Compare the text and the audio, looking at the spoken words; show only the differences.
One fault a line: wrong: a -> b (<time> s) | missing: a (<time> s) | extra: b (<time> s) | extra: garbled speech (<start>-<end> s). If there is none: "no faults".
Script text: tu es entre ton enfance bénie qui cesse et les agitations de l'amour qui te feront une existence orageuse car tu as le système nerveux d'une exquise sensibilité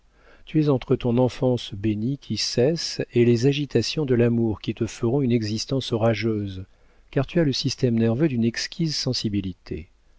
no faults